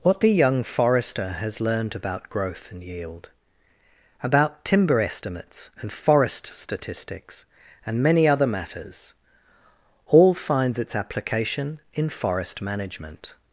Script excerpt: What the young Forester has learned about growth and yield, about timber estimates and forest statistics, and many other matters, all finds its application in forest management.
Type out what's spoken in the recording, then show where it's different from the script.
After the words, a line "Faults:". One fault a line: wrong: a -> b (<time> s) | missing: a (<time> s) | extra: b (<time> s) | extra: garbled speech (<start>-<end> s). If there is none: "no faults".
What the young Forester has learned about growth and yield, about timber estimates and forest statistics, and many other matters, all finds its application in forest management.
Faults:
no faults